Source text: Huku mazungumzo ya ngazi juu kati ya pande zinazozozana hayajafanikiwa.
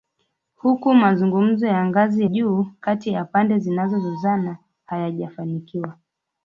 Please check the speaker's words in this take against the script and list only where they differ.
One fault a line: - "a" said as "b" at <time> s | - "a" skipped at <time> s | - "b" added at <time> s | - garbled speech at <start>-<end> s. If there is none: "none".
none